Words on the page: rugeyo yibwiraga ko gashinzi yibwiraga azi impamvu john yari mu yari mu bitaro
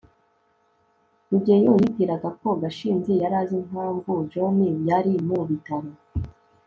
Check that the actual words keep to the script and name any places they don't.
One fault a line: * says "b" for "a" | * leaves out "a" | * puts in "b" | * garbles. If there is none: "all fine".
* says "yari" for "yibwiraga"
* leaves out "yari mu"